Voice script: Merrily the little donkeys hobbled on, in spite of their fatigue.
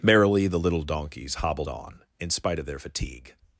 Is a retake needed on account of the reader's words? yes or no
no